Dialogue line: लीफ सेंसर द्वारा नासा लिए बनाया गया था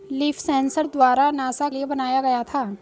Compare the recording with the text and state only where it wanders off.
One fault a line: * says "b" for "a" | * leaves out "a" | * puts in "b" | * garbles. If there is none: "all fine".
all fine